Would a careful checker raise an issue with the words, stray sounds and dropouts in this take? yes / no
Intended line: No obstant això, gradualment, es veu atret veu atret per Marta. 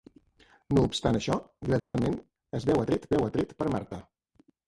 yes